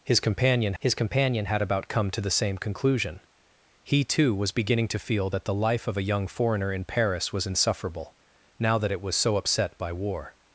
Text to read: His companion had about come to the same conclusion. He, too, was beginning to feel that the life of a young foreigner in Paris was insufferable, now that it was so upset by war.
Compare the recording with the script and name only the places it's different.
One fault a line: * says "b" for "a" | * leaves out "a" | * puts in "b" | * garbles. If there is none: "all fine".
* puts in "his companion"